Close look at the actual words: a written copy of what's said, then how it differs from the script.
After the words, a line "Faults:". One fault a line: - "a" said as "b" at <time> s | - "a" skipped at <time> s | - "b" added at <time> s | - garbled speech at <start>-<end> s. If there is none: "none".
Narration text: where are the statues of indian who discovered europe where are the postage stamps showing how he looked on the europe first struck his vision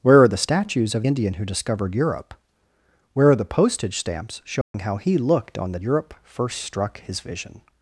where are the statues of indian who discovered europe where are the postage stamps showing how he looked on the europe first struck his vision
Faults:
none